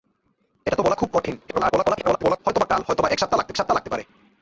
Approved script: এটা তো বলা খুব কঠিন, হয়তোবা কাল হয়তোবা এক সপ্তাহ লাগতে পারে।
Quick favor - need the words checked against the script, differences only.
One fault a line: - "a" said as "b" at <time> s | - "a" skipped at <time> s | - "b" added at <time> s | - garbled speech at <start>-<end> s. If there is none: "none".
- garbled speech at 1.5-2.4 s
- "সপ্তাহ লাগতে" added at 3.6 s